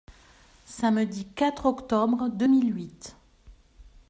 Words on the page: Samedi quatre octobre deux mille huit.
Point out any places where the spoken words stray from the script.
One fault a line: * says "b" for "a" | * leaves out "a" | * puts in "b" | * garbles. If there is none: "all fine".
all fine